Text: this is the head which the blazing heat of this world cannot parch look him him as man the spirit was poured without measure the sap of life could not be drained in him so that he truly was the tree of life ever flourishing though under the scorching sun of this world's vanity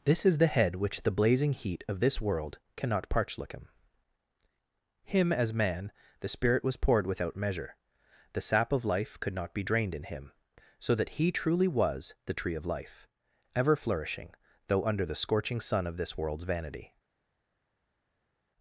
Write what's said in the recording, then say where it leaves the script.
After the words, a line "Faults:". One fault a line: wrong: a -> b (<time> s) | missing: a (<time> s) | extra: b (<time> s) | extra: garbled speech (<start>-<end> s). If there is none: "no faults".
this is the head which the blazing heat of this world cannot parch look him him as man the spirit was poured without measure the sap of life could not be drained in him so that he truly was the tree of life ever flourishing though under the scorching sun of this world's vanity
Faults:
no faults